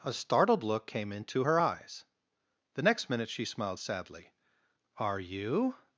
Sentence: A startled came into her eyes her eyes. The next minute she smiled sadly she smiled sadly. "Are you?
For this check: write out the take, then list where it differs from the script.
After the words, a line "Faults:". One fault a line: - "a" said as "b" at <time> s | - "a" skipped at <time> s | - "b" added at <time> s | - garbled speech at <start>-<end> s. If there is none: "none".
A startled look came into her eyes. The next minute she smiled sadly. "Are you?
Faults:
- "look" added at 0.6 s
- "her eyes" skipped at 2.0 s
- "she smiled sadly" skipped at 4.3 s